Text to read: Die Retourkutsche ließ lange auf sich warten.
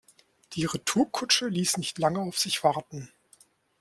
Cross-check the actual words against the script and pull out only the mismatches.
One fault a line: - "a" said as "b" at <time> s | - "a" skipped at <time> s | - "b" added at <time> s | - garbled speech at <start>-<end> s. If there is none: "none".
- "nicht" added at 1.8 s